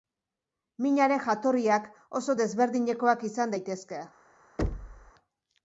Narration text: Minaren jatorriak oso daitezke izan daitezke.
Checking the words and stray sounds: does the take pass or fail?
fail